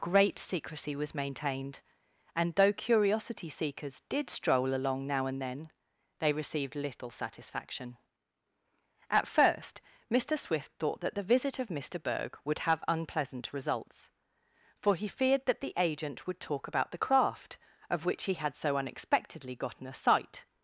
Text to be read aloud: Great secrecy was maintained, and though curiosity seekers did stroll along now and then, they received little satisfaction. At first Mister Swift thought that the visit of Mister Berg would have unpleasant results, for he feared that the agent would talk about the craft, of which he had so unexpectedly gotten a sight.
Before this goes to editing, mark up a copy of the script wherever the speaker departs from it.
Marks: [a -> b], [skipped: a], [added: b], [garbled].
Great secrecy was maintained, and though curiosity seekers did stroll along now and then, they received little satisfaction. At first Mister Swift thought that the visit of Mister Berg would have unpleasant results, for he feared that the agent would talk about the craft, of which he had so unexpectedly gotten a sight.